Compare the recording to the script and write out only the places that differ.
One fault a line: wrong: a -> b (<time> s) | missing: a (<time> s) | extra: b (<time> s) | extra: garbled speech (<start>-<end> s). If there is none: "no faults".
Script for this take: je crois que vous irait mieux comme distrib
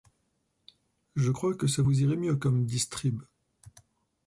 extra: ça (1.7 s)